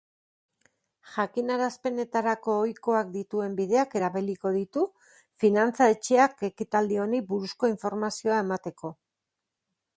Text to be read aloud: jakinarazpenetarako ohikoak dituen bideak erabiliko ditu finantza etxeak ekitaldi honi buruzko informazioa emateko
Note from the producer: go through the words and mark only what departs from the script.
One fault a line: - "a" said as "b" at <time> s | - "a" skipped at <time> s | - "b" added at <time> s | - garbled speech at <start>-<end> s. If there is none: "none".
none